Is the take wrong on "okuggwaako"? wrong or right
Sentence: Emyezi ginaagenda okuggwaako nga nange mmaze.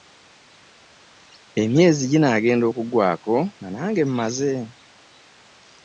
right